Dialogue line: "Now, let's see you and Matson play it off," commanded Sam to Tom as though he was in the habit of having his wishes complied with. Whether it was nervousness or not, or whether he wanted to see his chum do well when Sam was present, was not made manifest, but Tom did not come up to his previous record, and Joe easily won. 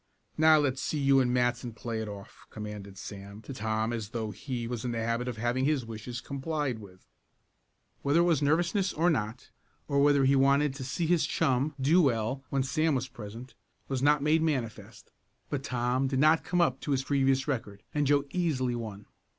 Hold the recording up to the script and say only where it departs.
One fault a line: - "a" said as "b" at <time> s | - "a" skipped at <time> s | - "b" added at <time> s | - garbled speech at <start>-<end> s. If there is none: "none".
none